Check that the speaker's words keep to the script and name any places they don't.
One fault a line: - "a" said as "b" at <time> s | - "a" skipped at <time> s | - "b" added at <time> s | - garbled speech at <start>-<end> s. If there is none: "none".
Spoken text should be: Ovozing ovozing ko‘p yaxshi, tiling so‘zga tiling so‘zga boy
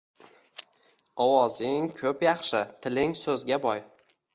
- "ovozing" skipped at 1.9 s
- "tiling so‘zga" skipped at 3.7 s